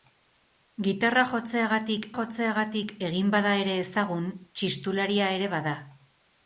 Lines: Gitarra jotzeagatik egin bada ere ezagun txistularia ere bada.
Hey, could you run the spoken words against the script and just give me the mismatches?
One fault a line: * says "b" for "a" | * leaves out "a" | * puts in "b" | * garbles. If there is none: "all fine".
* puts in "jotzeagatik"